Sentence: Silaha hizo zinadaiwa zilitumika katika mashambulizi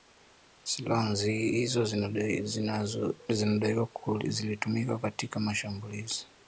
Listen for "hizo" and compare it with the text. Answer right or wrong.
right